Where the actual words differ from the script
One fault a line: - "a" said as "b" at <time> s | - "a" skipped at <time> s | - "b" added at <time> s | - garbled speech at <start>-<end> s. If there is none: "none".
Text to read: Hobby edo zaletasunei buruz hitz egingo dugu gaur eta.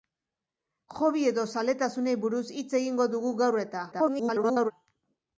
- garbled speech at 3.9-4.7 s